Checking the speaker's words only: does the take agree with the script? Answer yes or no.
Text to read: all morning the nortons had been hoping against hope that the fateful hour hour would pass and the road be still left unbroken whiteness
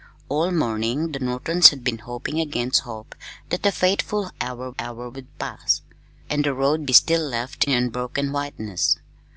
yes